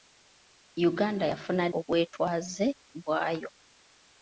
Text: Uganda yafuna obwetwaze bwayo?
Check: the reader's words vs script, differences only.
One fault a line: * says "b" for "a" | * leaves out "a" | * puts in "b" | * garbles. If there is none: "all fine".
all fine